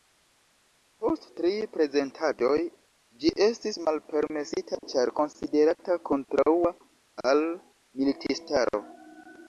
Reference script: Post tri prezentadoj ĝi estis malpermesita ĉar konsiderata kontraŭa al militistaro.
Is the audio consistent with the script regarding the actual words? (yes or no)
yes